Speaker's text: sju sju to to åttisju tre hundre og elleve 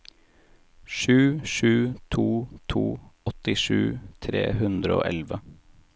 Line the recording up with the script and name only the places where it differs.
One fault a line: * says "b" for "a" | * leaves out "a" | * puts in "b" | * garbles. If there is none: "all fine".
all fine